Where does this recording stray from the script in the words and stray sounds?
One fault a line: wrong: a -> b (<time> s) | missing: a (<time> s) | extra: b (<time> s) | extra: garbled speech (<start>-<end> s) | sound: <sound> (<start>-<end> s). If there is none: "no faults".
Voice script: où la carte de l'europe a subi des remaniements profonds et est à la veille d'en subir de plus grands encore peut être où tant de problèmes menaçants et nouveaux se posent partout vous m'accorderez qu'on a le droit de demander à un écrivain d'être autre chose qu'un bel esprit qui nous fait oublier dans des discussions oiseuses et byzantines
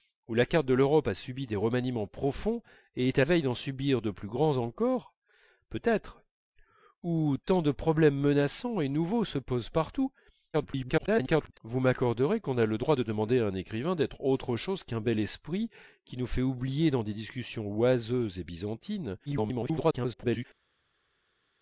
missing: la (3.2 s)
extra: garbled speech (10.5-11.6 s)
extra: garbled speech (19.3-20.5 s)